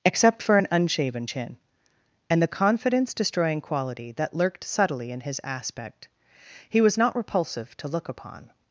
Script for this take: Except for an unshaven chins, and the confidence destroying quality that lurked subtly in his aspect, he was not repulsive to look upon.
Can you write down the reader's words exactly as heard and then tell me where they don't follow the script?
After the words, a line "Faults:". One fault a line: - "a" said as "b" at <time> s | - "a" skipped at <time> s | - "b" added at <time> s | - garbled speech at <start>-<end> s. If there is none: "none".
Except for an unshaven chin, and the confidence destroying quality that lurked subtly in his aspect, he was not repulsive to look upon.
Faults:
- "chins" said as "chin" at 1.2 s